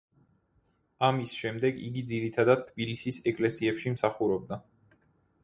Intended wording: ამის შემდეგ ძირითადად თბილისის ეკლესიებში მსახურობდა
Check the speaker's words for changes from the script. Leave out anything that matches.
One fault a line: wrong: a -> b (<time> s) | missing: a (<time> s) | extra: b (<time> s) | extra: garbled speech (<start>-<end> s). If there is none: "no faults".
extra: იგი (1.9 s)